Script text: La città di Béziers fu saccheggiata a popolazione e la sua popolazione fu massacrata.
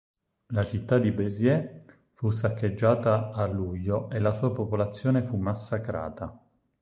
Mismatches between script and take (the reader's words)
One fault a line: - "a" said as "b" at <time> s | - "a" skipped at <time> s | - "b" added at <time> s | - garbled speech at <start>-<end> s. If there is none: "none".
- "popolazione" said as "luglio" at 3.5 s